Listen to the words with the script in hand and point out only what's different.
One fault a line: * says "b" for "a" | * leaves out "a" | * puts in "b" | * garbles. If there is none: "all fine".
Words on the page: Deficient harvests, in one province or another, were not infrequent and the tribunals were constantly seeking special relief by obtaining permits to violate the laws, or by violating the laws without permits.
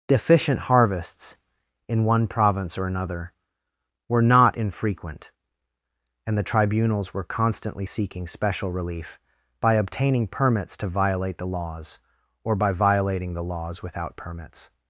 all fine